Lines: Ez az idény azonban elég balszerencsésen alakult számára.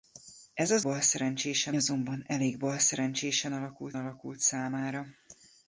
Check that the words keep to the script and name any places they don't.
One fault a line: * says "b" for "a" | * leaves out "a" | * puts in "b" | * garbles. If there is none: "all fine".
* says "balszerencsésen" for "idény"
* puts in "alakult"